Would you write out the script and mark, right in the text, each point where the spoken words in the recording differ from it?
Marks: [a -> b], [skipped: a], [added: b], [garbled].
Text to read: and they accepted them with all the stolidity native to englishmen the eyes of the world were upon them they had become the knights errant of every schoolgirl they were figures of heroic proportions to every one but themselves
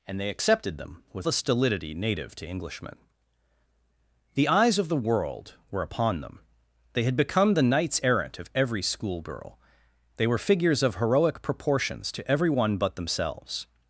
and they accepted them with [skipped: all] the stolidity native to englishmen the eyes of the world were upon them they had become the knights errant of every schoolgirl they were figures of heroic proportions to every one but themselves